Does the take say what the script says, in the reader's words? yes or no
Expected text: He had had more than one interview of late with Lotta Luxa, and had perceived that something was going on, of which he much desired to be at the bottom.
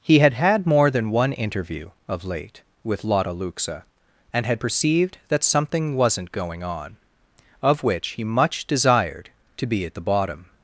no